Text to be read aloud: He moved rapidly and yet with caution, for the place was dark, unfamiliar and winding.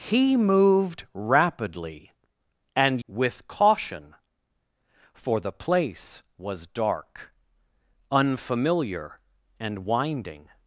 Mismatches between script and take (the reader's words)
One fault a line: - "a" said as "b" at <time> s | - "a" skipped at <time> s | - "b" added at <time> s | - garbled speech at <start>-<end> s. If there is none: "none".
- "yet" skipped at 3.0 s